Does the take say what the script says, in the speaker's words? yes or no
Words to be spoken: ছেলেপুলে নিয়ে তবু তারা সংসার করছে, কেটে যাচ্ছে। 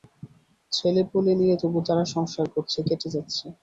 yes